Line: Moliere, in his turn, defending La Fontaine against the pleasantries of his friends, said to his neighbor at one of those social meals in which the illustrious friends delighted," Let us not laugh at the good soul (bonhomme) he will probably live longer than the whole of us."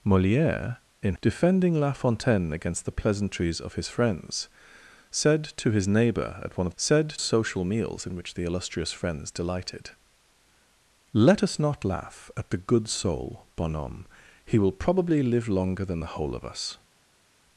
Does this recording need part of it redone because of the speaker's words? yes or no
yes